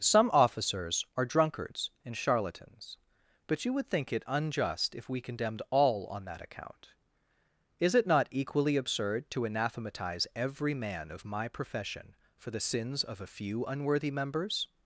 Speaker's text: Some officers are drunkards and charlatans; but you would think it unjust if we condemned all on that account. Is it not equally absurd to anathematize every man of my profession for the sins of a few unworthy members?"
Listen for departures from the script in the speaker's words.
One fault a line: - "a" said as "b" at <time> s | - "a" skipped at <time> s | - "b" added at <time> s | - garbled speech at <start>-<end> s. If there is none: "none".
none